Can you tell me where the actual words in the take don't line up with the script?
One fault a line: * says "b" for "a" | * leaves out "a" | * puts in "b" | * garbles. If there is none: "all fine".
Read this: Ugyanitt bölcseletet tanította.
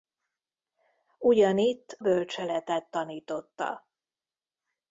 all fine